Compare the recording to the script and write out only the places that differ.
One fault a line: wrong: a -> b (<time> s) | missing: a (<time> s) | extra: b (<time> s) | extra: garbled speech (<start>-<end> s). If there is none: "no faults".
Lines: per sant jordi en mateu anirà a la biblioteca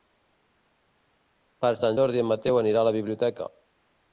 no faults